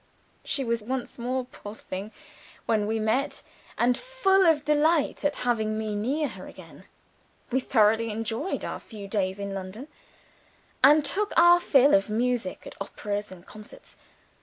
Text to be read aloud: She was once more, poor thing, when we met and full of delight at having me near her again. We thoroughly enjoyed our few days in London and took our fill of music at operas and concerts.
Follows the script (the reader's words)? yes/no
yes